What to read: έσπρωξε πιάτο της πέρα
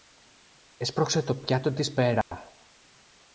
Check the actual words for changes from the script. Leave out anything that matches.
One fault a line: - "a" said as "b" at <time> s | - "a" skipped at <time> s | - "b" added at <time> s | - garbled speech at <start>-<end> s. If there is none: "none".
- "το" added at 1.2 s